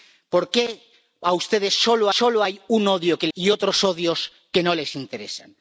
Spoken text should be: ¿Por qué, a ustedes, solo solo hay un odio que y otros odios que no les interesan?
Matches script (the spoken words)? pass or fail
pass